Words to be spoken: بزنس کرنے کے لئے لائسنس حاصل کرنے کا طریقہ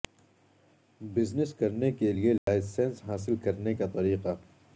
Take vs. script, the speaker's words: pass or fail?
pass